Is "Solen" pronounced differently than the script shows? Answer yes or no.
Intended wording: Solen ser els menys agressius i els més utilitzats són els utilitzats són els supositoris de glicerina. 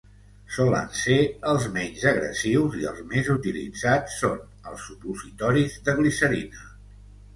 no